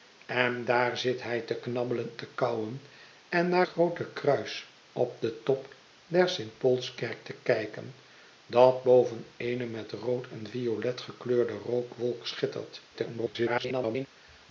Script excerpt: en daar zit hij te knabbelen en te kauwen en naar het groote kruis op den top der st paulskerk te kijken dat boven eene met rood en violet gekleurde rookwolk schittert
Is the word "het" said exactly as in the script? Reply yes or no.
no